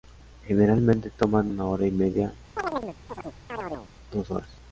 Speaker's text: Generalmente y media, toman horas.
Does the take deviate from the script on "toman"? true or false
true